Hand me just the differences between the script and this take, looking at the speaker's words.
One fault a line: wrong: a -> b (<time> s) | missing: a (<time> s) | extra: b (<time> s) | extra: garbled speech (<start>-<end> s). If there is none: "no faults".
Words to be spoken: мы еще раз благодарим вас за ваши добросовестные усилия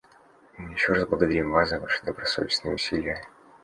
no faults